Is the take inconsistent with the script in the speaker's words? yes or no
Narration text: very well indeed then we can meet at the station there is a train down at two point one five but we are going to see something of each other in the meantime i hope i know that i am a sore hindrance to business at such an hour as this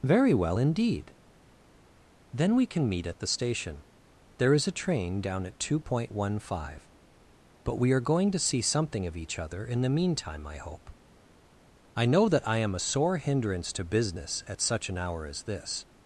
no